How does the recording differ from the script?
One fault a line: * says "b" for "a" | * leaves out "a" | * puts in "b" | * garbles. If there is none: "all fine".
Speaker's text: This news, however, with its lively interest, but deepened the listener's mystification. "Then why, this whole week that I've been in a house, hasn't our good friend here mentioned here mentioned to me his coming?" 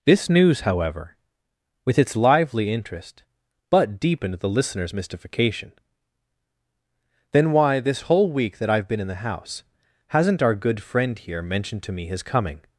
* says "the" for "a"
* leaves out "here mentioned"